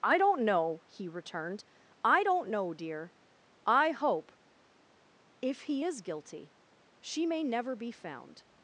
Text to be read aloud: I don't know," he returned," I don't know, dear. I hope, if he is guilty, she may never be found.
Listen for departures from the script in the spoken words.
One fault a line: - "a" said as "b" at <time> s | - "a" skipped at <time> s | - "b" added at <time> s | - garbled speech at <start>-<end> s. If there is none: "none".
none